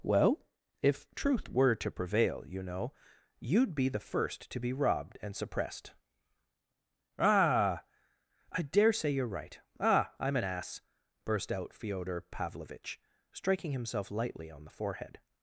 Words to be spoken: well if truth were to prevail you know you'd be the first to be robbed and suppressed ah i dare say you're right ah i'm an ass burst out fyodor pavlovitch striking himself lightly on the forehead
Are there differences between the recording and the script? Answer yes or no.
no